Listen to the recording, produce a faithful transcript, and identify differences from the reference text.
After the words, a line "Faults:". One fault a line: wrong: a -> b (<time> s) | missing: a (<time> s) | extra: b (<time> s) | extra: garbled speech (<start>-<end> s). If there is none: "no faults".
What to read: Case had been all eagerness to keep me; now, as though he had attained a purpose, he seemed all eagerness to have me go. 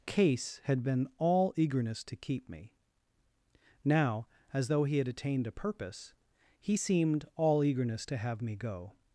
Case had been all eagerness to keep me; now, as though he had attained a purpose, he seemed all eagerness to have me go.
Faults:
no faults